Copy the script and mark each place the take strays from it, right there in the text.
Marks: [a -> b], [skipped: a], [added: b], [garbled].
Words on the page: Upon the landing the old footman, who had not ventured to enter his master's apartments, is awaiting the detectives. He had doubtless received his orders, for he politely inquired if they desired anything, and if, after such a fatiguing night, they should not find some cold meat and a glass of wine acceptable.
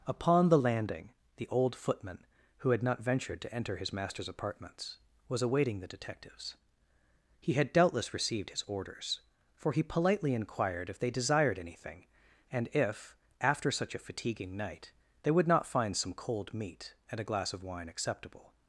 Upon the landing the old footman, who had not ventured to enter his master's apartments, [is -> was] awaiting the detectives. He had doubtless received his orders, for he politely inquired if they desired anything, and if, after such a fatiguing night, they [should -> would] not find some cold meat and a glass of wine acceptable.